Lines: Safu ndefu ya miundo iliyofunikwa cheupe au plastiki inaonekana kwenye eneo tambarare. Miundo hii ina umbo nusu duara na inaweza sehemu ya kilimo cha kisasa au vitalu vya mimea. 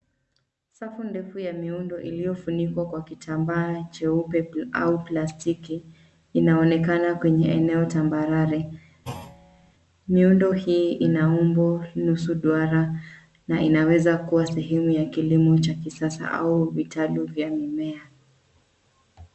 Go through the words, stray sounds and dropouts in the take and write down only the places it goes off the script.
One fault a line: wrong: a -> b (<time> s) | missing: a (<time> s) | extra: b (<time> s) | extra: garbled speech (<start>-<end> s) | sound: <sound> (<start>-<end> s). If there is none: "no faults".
extra: kwa kitambaa (2.9 s)
sound: thud (9.0-9.7 s)
extra: kuwa (14.2 s)